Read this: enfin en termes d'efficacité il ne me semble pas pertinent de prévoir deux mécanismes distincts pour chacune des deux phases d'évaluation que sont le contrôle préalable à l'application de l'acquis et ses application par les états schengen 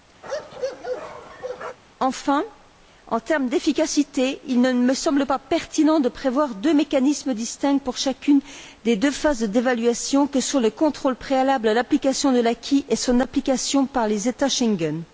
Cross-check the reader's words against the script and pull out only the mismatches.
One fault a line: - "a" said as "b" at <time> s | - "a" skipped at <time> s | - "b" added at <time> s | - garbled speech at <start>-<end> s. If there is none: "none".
- "ses" said as "son" at 13.0 s